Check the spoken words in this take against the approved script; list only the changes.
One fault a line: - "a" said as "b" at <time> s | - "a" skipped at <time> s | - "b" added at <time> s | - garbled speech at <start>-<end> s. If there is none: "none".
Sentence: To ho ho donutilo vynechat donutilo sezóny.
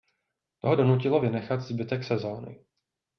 - "ho" skipped at 0.8 s
- "donutilo" said as "zbytek" at 1.6 s